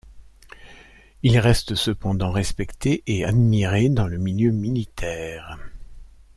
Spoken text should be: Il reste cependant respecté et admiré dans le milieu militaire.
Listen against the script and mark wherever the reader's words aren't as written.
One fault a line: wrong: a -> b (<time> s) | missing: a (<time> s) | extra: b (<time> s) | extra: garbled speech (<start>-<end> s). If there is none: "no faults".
no faults